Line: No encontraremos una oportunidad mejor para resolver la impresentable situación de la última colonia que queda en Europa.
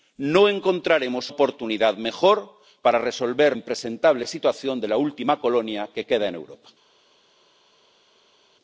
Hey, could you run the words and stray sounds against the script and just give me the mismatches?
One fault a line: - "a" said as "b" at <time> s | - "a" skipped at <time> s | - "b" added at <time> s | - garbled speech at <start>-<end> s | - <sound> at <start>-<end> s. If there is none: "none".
- "una" skipped at 1.3 s
- "la" skipped at 3.6 s